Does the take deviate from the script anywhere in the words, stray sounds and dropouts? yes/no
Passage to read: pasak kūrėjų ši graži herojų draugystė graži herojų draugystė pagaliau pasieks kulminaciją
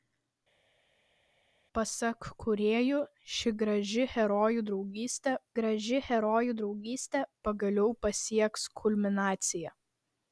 no